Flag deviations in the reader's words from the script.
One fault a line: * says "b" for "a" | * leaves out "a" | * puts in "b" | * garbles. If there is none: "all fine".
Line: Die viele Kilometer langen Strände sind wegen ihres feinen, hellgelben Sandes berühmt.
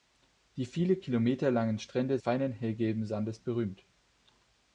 * leaves out "sind wegen ihres"